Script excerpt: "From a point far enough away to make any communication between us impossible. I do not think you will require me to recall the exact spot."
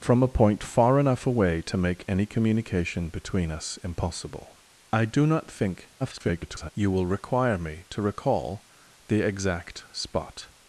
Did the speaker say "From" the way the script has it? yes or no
yes